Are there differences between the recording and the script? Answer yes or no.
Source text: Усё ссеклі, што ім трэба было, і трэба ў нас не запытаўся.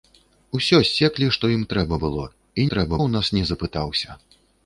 no